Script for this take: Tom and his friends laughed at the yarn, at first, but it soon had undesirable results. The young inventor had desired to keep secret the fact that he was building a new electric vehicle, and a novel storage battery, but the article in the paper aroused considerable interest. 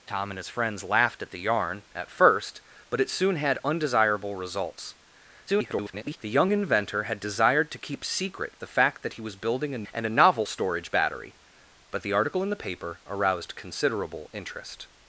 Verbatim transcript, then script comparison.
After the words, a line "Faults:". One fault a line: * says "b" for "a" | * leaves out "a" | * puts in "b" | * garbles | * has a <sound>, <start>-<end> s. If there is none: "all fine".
Tom and his friends laughed at the yarn, at first, but it soon had undesirable results. [garbled] The young inventor had desired to keep secret the fact that he was building a and a novel storage battery, but the article in the paper aroused considerable interest.
Faults:
* garbles
* leaves out "new electric vehicle"